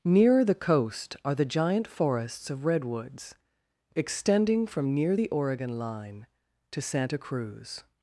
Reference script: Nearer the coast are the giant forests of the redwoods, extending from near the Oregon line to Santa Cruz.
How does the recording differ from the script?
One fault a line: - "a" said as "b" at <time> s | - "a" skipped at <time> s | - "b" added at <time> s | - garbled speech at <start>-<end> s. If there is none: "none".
- "the" skipped at 2.6 s